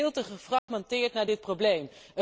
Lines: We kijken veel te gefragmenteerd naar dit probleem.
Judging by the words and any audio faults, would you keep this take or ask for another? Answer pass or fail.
fail